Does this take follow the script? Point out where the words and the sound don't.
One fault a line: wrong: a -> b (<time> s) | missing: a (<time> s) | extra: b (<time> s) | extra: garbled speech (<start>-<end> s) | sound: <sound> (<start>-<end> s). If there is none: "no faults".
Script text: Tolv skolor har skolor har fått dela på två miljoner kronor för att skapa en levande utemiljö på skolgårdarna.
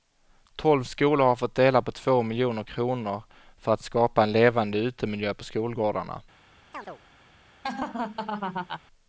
missing: skolor har (1.4 s)
sound: chirp (6.7-7.0 s)
sound: laugh (7.6-8.8 s)